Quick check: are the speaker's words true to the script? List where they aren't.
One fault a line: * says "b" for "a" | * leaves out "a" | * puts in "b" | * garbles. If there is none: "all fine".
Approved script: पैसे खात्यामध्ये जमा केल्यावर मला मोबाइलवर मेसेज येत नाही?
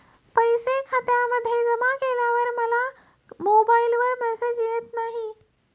all fine